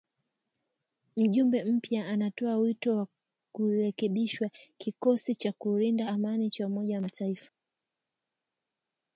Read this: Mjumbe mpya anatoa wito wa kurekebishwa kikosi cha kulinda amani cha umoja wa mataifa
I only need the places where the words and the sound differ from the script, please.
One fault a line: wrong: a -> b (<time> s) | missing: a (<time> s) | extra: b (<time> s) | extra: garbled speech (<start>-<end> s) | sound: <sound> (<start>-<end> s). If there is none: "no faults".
no faults